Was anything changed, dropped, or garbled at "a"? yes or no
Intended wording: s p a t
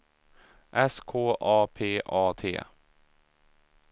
no